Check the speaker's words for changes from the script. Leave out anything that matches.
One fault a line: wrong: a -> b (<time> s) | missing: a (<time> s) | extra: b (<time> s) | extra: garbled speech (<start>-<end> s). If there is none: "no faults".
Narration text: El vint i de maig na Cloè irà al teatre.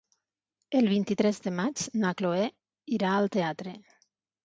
extra: tres (1.2 s)